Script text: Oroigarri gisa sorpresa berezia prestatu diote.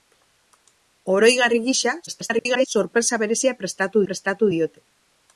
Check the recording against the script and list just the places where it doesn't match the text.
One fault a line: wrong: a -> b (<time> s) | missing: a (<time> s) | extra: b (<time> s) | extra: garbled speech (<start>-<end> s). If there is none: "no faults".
extra: garbled speech (2.1-2.7 s)
extra: prestatu (4.1 s)